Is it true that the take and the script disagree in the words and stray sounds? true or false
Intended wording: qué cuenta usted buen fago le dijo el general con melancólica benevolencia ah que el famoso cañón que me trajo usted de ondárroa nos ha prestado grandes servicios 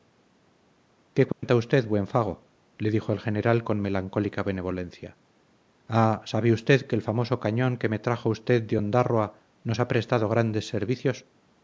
true